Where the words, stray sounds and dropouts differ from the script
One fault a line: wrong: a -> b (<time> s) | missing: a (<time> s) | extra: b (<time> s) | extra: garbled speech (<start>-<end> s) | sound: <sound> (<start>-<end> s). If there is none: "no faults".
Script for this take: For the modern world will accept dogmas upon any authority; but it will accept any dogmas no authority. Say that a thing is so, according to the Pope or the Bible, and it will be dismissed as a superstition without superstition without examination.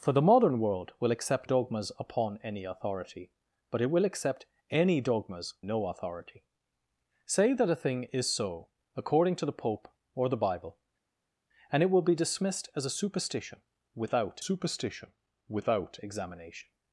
no faults